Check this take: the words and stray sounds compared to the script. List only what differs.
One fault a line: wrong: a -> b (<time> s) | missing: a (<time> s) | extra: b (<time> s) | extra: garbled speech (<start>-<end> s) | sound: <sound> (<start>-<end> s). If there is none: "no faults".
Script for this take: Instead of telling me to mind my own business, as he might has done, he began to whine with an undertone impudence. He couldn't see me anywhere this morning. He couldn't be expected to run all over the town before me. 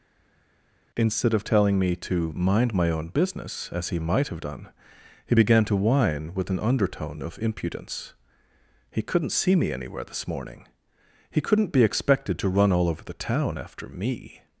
wrong: has -> have (4.3 s)
extra: of (7.2 s)
wrong: before -> after (13.6 s)